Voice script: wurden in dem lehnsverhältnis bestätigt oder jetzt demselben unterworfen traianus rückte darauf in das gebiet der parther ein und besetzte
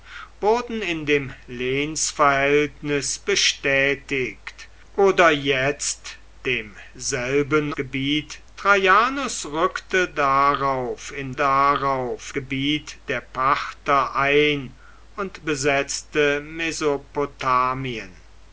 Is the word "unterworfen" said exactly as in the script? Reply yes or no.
no